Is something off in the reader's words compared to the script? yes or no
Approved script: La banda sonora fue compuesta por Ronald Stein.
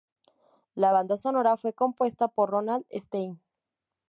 no